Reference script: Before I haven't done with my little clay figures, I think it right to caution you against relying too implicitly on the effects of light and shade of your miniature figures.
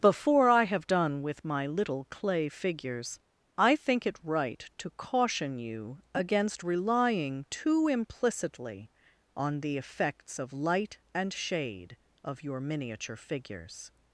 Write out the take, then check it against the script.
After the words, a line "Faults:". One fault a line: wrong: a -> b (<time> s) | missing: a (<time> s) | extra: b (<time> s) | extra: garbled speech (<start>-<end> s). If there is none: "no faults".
Before I have done with my little clay figures, I think it right to caution you against relying too implicitly on the effects of light and shade of your miniature figures.
Faults:
wrong: haven't -> have (0.6 s)